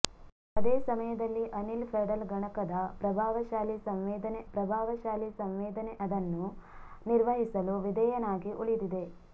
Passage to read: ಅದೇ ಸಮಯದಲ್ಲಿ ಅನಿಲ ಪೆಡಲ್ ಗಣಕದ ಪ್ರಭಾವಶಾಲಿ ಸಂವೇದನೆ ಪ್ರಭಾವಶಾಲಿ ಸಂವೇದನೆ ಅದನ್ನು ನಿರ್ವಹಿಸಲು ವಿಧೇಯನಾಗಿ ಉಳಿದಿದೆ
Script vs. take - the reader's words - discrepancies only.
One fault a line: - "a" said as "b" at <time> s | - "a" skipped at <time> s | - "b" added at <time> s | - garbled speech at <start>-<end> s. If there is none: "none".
none